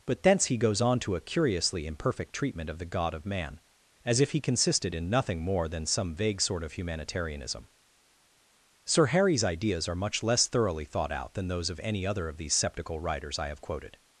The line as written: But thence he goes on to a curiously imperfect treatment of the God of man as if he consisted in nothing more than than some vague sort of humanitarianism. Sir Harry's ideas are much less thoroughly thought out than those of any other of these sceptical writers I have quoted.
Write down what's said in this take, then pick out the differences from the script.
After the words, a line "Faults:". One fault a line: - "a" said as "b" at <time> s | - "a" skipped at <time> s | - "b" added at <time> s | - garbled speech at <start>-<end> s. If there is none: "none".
But thence he goes on to a curiously imperfect treatment of the God of man as if he consisted in nothing more than some vague sort of humanitarianism. Sir Harry's ideas are much less thoroughly thought out than those of any other of these sceptical writers I have quoted.
Faults:
- "than" skipped at 5.8 s